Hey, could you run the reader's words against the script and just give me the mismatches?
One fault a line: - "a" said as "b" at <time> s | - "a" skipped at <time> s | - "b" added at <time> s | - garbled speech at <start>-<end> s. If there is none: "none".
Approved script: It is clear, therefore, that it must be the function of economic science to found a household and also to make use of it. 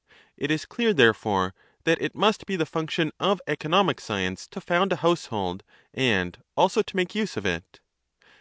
none